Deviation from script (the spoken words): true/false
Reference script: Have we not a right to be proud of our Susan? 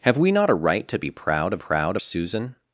true